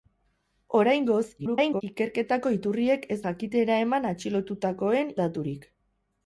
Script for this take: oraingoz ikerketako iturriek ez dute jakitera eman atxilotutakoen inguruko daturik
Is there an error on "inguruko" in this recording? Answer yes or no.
yes